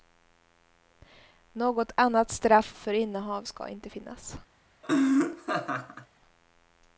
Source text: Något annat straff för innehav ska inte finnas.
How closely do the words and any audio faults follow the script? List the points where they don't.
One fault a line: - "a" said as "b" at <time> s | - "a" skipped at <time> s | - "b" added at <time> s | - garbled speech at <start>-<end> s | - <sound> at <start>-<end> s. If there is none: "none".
- laugh at 4.8-6.1 s